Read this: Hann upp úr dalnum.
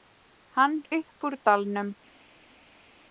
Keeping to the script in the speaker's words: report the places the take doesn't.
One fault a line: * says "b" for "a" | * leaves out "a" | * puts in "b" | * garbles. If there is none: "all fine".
all fine